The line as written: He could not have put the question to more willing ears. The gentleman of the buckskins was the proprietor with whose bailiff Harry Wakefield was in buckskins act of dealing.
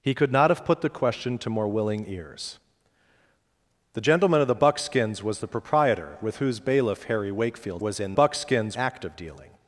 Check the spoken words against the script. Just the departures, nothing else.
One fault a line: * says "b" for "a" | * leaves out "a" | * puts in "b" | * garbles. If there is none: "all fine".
all fine